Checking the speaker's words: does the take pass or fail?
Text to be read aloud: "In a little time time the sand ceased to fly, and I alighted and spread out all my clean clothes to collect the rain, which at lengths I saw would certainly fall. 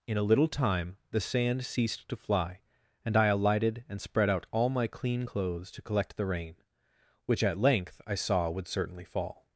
fail